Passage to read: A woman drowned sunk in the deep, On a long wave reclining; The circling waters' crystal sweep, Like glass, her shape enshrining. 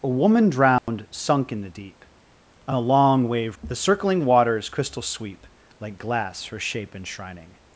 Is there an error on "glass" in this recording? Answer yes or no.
no